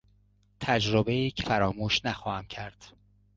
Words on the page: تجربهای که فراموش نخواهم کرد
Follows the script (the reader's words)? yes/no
yes